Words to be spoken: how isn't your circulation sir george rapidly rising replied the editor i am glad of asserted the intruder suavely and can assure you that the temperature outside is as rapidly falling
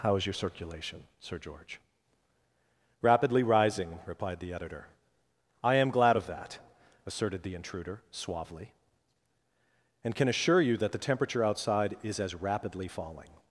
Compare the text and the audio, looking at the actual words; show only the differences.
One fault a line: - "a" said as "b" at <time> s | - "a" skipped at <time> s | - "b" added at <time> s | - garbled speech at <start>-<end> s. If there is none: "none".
- "isn't" said as "is" at 0.1 s
- "that" added at 6.2 s